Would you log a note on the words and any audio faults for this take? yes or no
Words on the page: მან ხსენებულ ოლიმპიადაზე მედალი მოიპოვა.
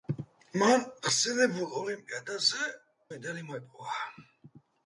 no